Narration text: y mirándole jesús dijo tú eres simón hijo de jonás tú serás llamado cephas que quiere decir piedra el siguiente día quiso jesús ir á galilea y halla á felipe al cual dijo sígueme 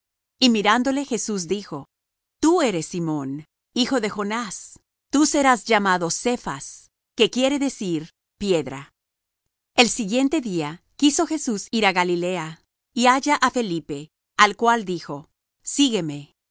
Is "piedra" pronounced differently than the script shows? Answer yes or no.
no